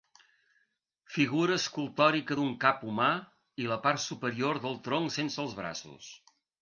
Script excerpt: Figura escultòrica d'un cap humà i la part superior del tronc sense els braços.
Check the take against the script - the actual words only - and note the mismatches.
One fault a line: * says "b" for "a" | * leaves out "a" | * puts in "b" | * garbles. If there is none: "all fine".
all fine